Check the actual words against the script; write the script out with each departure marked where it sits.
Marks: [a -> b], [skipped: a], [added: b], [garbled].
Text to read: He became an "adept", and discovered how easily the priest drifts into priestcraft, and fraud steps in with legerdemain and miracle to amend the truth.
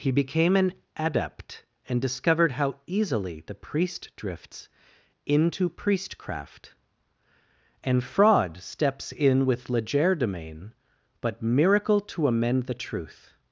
He became an "adept", and discovered how easily the priest drifts into priestcraft, and fraud steps in with legerdemain [and -> but] miracle to amend the truth.